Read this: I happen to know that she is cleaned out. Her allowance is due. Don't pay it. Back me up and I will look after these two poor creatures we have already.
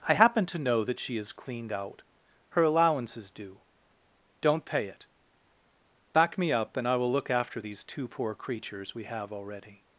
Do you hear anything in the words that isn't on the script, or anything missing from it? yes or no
no